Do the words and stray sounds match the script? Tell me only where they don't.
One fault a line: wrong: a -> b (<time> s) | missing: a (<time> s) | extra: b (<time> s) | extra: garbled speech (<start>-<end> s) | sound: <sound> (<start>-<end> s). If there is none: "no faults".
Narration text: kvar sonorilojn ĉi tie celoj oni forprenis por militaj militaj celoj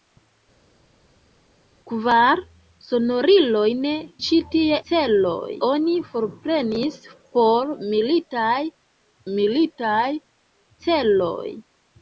no faults